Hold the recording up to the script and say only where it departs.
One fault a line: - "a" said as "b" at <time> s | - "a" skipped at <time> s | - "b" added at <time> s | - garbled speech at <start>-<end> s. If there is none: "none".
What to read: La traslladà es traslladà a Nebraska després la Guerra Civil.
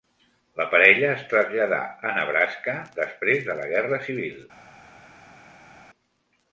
- "traslladà" said as "parella" at 0.7 s
- "de" added at 3.5 s